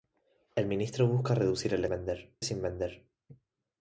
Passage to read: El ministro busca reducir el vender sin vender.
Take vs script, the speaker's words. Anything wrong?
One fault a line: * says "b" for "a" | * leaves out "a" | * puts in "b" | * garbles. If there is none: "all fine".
all fine